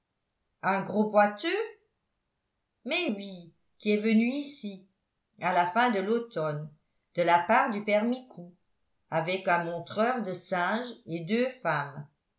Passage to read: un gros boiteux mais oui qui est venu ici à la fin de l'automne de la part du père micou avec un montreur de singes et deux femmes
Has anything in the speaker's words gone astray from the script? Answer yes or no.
no